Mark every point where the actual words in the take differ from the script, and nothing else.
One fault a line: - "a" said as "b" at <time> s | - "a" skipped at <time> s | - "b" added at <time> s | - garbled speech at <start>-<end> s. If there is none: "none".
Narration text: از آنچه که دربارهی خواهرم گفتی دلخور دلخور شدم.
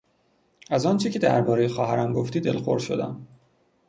- "دلخور" skipped at 2.8 s